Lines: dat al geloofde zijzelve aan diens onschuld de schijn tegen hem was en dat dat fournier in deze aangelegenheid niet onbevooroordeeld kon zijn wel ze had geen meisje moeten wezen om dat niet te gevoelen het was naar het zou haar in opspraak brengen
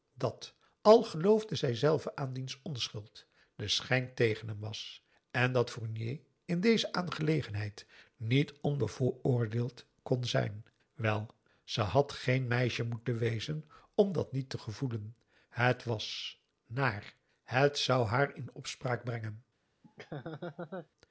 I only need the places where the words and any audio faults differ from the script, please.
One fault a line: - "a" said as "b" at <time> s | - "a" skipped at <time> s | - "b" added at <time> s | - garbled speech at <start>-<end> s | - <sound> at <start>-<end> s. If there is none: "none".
- "dat" skipped at 5.7 s
- laugh at 19.8-20.9 s